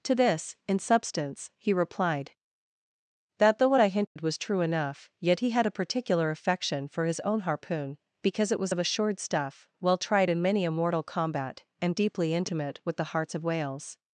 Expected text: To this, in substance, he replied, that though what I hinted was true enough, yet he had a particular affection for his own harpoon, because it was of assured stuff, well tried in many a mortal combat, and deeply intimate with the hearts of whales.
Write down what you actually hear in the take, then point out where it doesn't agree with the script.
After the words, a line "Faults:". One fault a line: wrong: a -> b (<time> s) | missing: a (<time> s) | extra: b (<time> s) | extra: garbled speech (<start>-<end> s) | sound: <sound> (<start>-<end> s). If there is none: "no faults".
To this, in substance, he replied, that though what I hinted was true enough, yet he had a particular affection for his own harpoon, because it was of assured stuff, well tried in many a mortal combat, and deeply intimate with the hearts of whales.
Faults:
sound: dropout (4.1-4.2 s)